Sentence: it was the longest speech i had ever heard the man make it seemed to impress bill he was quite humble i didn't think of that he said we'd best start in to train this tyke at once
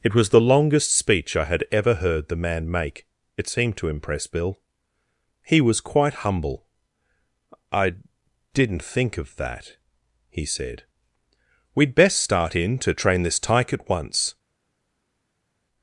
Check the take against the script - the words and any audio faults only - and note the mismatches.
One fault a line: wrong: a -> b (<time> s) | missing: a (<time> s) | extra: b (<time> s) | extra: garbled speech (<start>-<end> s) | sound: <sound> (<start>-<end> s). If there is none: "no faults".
no faults